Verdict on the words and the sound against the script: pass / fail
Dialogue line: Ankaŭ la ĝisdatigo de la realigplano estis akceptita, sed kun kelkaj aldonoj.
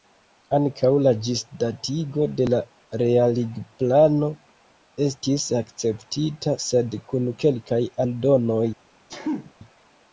fail